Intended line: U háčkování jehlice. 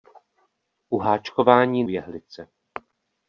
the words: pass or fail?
pass